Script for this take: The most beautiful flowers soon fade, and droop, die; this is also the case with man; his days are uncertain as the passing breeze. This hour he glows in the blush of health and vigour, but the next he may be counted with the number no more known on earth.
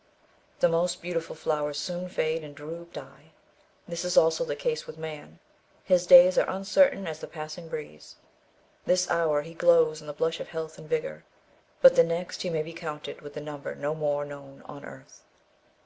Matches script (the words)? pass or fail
pass